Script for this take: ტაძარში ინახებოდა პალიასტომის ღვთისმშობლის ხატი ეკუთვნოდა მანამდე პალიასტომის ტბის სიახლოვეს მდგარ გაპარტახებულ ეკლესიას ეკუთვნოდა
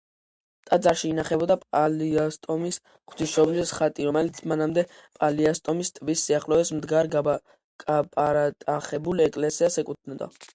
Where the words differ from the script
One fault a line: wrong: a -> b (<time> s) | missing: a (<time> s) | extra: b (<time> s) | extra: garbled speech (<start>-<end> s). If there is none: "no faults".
wrong: ეკუთვნოდა -> რომელიც (4.1 s)